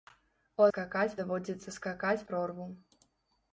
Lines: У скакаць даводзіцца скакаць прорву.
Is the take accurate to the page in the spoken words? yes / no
yes